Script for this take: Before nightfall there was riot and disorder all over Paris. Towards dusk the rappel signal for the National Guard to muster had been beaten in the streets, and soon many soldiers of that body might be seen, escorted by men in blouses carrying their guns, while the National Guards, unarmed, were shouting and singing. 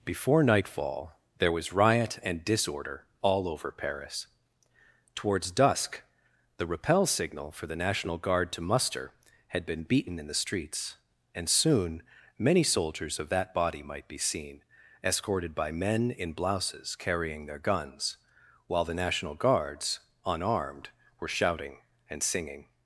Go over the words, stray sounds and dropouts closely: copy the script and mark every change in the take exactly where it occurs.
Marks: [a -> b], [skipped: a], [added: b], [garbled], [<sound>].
Before nightfall there was riot and disorder all over Paris. Towards dusk the rappel signal for the National Guard to muster had been beaten in the streets, and soon many soldiers of that body might be seen, escorted by men in blouses carrying their guns, while the National Guards, unarmed, were shouting and singing.